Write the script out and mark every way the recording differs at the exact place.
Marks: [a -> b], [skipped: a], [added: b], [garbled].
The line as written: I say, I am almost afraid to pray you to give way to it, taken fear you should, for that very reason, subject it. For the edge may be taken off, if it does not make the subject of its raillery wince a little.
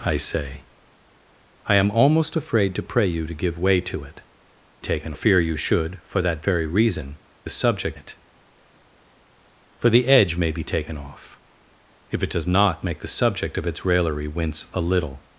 I say, I am almost afraid to pray you to give way to it, taken fear you should, for that very reason, subject it. For the edge may be taken off, if it does not make the subject of its raillery wince a little.